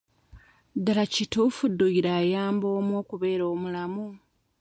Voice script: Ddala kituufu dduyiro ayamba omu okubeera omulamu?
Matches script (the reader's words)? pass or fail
pass